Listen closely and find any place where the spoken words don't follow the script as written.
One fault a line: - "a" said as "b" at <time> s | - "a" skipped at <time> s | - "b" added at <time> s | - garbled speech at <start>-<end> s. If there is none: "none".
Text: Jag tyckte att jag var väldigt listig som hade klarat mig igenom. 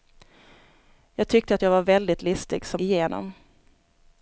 - "hade klarat mig" skipped at 2.8 s